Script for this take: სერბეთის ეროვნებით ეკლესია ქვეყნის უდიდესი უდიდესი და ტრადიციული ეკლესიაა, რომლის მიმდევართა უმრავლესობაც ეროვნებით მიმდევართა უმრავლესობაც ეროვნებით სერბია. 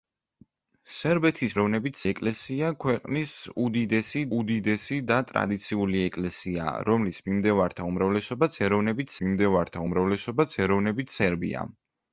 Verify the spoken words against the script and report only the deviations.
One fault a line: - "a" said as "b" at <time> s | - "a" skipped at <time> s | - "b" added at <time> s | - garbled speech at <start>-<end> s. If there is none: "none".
none